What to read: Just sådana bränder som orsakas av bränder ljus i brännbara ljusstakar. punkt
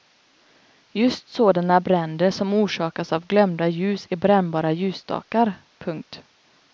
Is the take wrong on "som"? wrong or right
right